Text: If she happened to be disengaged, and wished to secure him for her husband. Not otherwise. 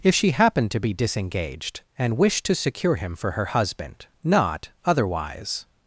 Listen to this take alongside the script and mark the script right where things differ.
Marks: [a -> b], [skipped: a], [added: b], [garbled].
If she happened to be disengaged, and wished to secure him for her husband. Not otherwise.